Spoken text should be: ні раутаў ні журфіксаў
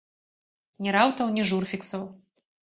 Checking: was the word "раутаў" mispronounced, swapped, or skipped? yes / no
no